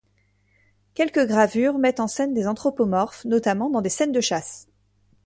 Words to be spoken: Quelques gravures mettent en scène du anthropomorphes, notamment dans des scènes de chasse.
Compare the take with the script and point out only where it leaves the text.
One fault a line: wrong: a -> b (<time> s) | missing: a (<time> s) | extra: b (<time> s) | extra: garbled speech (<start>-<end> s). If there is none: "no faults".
wrong: du -> des (2.3 s)